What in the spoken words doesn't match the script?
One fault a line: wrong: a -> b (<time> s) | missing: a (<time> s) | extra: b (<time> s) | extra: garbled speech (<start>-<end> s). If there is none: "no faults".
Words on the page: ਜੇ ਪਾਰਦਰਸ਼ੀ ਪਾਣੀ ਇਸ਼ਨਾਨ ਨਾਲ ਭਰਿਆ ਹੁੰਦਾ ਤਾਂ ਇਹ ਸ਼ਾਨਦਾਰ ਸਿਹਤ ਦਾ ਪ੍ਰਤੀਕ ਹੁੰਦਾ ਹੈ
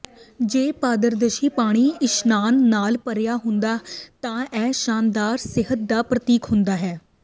no faults